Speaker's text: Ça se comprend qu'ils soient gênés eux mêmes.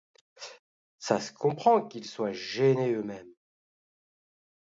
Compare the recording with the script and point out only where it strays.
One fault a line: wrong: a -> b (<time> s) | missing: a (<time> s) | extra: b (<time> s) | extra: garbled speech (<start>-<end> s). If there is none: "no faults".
no faults